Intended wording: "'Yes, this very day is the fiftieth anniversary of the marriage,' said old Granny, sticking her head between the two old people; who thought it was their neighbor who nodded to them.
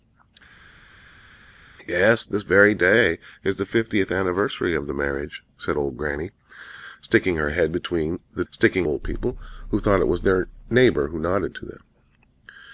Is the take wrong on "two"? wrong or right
wrong